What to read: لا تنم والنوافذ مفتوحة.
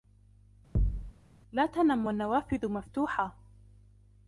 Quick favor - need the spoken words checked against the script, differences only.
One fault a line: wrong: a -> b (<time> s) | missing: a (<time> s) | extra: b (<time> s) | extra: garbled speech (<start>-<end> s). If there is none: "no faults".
no faults